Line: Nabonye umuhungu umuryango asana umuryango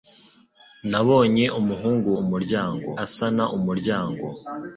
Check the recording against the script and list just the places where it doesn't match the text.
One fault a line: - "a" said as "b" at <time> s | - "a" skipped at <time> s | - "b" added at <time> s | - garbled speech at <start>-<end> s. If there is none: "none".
none